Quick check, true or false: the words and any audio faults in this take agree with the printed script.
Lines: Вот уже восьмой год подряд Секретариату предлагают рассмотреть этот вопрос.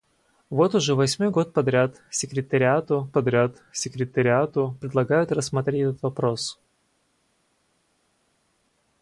false